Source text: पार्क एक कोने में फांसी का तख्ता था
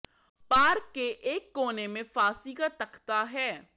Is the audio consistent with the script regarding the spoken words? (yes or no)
no